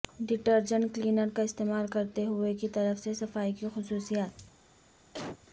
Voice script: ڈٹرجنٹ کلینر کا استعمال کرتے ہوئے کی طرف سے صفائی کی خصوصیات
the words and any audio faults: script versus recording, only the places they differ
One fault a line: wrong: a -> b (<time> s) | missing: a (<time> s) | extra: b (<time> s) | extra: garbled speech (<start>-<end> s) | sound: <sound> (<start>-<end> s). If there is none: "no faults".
sound: cough (5.1-5.4 s)